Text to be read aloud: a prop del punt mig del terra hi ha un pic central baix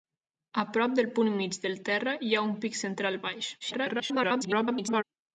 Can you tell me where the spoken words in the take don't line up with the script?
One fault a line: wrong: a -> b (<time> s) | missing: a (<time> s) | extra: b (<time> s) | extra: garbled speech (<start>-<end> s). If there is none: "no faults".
extra: garbled speech (3.6-5.0 s)